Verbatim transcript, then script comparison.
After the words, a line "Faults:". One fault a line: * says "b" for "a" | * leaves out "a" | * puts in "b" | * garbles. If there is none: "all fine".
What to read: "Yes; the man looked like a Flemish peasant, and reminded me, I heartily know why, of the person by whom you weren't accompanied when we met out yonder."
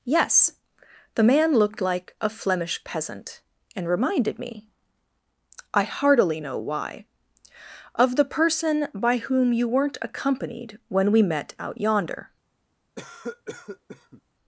"Yes; the man looked like a Flemish peasant, and reminded me, I heartily know why, of the person by whom you weren't accompanied when we met out yonder."
Faults:
all fine